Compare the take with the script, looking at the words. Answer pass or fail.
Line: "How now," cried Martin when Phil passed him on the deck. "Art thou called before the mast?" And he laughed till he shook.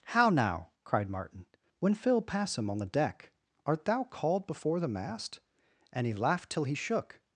fail